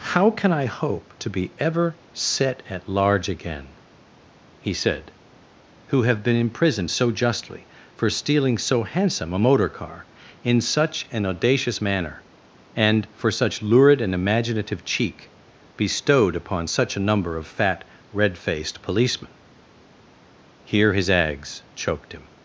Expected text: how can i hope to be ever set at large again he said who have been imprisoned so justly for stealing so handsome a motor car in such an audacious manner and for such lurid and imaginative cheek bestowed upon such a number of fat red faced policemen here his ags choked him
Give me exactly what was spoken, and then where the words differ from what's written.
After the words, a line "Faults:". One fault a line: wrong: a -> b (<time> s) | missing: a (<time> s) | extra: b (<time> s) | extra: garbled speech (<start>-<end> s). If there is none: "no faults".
how can i hope to be ever set at large again he said who have been imprisoned so justly for stealing so handsome a motor car in such an audacious manner and for such lurid and imaginative cheek bestowed upon such a number of fat red faced policemen here his ags choked him
Faults:
no faults